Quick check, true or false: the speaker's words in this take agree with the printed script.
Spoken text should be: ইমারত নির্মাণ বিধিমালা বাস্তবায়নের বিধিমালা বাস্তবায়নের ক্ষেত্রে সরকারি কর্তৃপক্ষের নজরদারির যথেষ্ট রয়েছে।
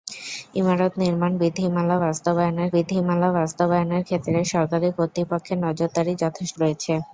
true